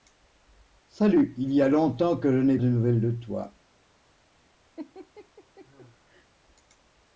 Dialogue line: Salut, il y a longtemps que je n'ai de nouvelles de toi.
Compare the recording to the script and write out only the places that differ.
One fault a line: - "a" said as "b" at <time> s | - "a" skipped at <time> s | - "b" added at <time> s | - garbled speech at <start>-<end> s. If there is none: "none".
none